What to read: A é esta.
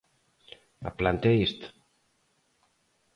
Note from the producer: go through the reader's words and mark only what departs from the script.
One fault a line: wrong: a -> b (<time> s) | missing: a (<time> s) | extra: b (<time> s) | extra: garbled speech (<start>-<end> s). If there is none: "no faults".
extra: planta (1.0 s)